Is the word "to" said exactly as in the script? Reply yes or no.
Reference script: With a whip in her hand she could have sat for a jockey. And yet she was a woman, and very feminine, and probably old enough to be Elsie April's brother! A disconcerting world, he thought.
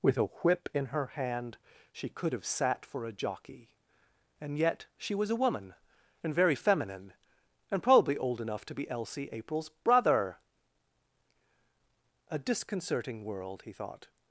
yes